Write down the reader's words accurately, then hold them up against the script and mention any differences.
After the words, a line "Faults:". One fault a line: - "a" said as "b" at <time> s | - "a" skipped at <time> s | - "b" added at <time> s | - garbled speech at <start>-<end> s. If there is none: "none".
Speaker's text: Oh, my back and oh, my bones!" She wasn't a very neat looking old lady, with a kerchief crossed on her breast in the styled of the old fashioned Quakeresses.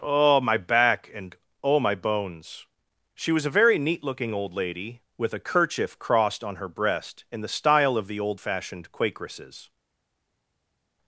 Oh, my back and oh, my bones!" She was a very neat looking old lady, with a kerchief crossed on her breast in the style of the old fashioned Quakeresses.
Faults:
- "wasn't" said as "was" at 3.3 s
- "styled" said as "style" at 7.5 s